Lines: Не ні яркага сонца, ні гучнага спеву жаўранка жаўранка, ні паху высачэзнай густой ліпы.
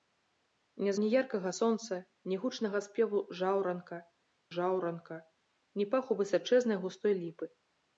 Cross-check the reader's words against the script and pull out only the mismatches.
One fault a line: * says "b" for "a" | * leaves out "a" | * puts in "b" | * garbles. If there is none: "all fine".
all fine